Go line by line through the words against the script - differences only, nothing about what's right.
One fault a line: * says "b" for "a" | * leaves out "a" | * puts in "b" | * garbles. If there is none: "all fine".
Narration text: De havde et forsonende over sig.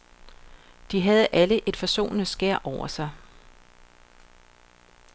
* puts in "alle"
* puts in "skær"